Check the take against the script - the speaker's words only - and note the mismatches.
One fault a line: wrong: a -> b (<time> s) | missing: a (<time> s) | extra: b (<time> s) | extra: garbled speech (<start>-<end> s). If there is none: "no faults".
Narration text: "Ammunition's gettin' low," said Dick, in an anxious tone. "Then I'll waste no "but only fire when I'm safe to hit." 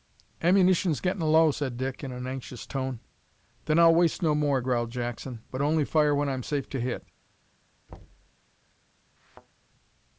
extra: more growled Jackson (4.3 s)